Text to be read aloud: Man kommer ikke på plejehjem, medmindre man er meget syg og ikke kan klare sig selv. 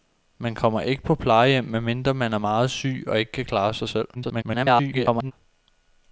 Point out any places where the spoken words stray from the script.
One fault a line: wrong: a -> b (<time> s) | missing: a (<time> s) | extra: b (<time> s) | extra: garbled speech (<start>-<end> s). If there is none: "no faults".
extra: garbled speech (4.1-5.3 s)